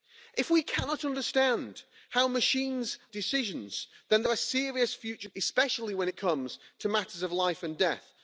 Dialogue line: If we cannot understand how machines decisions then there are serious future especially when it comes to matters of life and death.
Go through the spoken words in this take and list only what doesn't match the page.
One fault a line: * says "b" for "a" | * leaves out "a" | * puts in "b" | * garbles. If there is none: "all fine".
all fine